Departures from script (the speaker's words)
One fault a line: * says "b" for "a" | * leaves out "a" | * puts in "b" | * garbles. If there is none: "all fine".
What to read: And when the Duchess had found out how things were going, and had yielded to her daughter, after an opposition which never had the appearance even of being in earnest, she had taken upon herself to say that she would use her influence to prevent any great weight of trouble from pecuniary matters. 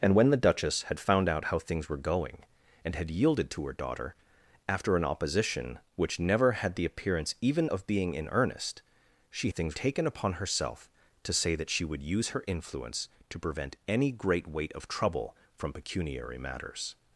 * says "things" for "had"